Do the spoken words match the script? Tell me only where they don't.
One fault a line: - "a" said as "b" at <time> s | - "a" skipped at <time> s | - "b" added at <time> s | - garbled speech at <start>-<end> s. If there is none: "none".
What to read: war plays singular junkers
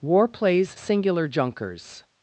none